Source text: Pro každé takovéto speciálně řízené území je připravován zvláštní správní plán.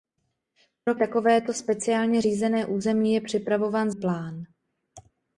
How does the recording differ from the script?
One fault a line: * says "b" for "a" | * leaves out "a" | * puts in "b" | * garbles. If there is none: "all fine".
* leaves out "každé"
* leaves out "zvláštní správní"